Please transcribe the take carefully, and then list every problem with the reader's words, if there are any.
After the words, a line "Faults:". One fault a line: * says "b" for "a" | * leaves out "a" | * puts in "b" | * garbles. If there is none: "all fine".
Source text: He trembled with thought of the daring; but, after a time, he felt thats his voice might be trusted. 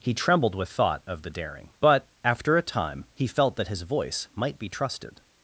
He trembled with thought of the daring; but, after a time, he felt that his voice might be trusted.
Faults:
* says "that" for "thats"